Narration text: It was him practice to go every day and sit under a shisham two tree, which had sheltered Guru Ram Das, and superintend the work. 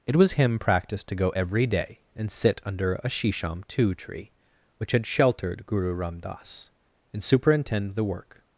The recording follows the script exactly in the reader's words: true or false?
true